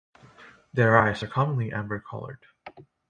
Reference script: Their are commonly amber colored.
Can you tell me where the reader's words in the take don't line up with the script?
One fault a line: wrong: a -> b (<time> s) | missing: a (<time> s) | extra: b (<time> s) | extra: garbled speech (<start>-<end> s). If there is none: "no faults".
extra: eyes (0.9 s)